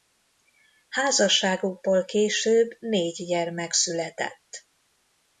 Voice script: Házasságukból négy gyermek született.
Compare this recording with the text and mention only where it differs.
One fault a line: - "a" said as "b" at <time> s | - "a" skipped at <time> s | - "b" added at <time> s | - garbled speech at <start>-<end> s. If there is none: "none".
- "később" added at 2.0 s